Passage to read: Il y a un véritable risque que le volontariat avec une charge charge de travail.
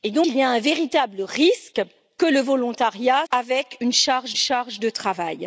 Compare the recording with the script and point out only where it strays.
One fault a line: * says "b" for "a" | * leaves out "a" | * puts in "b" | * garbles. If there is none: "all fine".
all fine